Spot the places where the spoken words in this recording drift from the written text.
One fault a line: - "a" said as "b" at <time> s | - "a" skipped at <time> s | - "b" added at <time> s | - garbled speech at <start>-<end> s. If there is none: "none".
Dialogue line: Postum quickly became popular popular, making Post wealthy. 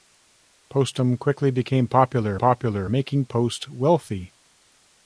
none